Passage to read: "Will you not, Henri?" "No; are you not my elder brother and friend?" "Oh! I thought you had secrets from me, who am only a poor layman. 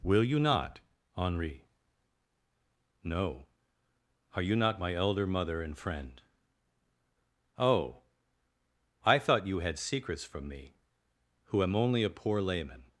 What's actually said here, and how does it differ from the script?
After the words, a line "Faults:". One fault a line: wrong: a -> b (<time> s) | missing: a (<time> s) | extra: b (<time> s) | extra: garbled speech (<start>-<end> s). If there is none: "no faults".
"Will you not, Henri?" "No; are you not my elder mother and friend?" "Oh! I thought you had secrets from me, who am only a poor layman.
Faults:
wrong: brother -> mother (5.3 s)